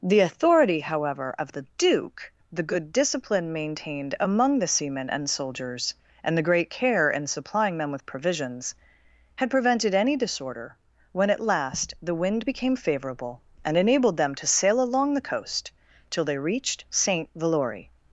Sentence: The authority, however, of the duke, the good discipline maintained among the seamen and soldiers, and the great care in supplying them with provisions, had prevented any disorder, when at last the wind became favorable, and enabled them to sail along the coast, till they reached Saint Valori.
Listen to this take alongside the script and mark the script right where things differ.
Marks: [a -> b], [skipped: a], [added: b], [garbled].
The authority, however, of the duke, the good discipline maintained among the seamen and soldiers, and the great care in supplying them with provisions, had prevented any disorder, when at last the wind became favorable, and enabled them to sail along the coast, till they reached Saint Valori.